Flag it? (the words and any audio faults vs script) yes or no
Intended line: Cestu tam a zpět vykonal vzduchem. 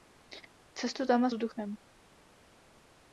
yes